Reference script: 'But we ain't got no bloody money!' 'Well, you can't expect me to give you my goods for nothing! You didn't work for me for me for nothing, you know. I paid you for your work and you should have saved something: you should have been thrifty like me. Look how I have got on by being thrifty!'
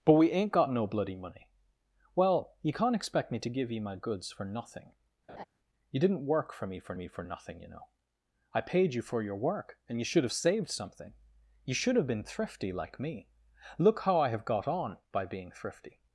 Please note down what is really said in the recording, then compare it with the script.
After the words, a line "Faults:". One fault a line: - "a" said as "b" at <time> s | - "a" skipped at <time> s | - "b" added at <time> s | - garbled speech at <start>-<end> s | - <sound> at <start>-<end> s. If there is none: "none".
'But we ain't got no bloody money!' 'Well, you can't expect me to give you my goods for nothing! You didn't work for me for me for nothing, you know. I paid you for your work and you should have saved something: you should have been thrifty like me. Look how I have got on by being thrifty!'
Faults:
- laugh at 5.3-5.5 s